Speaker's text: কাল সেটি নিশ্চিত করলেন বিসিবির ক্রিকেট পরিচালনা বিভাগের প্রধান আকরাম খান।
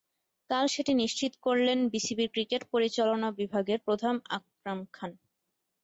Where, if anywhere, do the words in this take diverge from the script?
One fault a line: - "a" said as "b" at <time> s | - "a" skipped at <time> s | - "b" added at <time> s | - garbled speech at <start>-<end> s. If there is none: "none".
none